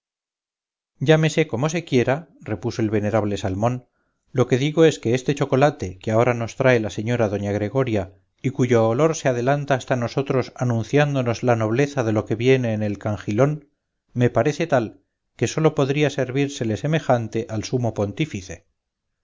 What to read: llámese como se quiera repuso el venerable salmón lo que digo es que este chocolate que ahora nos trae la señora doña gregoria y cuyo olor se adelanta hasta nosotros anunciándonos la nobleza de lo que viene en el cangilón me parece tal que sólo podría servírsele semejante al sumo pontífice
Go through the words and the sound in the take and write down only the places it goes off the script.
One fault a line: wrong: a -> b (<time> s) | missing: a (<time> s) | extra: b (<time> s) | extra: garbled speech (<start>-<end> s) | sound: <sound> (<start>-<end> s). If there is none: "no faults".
no faults